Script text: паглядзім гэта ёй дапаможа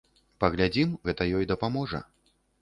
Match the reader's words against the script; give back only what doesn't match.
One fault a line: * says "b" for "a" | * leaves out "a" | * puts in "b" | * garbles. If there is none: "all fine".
all fine